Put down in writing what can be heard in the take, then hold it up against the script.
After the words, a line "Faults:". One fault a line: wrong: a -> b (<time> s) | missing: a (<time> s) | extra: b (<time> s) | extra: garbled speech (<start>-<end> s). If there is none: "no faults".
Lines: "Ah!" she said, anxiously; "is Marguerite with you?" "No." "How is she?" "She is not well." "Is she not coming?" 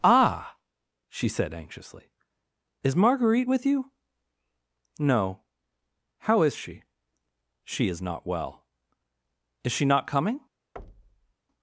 "Ah!" she said, anxiously; "is Marguerite with you?" "No." "How is she?" "She is not well." "Is she not coming?"
Faults:
no faults